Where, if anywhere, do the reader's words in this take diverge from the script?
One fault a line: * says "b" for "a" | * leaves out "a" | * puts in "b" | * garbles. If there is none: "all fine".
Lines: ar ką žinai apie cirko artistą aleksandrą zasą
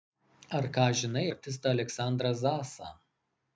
* leaves out "apie cirko"